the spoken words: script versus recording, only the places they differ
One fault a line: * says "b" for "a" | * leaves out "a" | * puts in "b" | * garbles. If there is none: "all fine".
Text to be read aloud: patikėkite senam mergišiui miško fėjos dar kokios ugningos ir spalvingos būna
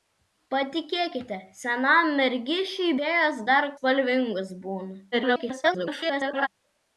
* leaves out "miško"
* leaves out "kokios ugningos ir"
* garbles